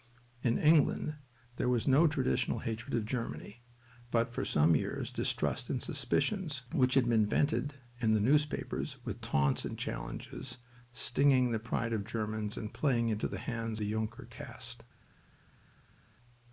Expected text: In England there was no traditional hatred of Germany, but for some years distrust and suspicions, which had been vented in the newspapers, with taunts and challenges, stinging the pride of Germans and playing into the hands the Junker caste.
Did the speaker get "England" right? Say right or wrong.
right